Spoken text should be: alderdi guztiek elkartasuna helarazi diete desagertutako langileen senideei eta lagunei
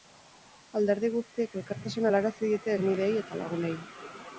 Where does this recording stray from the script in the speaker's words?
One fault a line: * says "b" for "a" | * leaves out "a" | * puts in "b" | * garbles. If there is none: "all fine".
* leaves out "desagertutako langileen"